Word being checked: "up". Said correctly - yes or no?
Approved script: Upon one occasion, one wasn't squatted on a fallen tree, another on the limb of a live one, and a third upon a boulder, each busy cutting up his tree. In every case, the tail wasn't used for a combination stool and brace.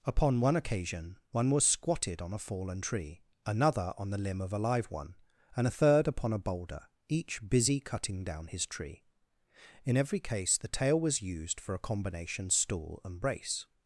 no